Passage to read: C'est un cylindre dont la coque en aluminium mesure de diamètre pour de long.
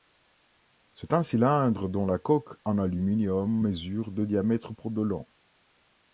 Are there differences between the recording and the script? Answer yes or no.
no